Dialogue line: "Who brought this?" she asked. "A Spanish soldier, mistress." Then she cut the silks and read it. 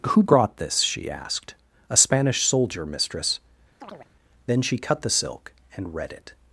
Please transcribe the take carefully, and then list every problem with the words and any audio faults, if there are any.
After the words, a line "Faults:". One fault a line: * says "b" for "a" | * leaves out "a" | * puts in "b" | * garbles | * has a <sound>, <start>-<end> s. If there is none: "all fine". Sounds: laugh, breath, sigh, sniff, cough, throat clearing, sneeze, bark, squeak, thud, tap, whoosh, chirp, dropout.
"Who brought this?" she asked. "A Spanish soldier, mistress." Then she cut the silk and read it.
Faults:
* has a chirp, 3.8-4.1 s
* says "silk" for "silks"